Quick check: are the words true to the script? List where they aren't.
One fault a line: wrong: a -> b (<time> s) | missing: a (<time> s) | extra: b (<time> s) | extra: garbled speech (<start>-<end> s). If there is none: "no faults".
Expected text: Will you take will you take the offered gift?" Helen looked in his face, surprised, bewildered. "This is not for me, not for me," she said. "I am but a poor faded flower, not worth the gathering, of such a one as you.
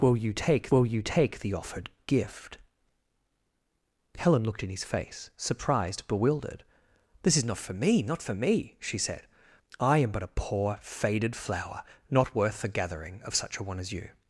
no faults